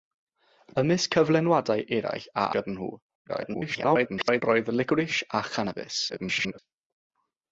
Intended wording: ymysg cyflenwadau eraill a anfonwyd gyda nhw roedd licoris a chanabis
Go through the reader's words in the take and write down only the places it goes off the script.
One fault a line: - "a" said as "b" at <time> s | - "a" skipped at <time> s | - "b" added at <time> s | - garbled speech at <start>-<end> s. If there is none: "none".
- "anfonwyd" skipped at 2.5 s
- garbled speech at 3.3-4.4 s
- garbled speech at 6.1-6.6 s